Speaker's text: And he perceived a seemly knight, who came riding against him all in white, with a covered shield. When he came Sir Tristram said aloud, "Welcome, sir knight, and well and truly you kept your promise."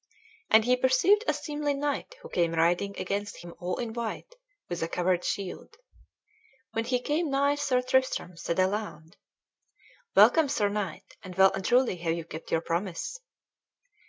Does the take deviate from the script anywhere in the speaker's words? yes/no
yes